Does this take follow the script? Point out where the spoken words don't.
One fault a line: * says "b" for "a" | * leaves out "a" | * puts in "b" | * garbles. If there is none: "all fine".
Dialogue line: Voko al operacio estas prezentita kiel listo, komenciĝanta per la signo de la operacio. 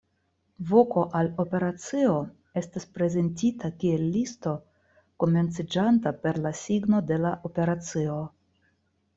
all fine